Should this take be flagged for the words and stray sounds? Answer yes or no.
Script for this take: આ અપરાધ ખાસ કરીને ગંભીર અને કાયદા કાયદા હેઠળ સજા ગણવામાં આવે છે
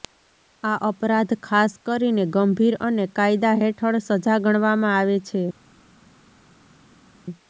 yes